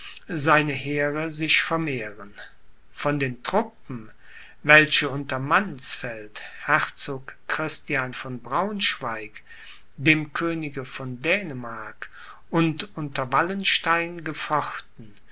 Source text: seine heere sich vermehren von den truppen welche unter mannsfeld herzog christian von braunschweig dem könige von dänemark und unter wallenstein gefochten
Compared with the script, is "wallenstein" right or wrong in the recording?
right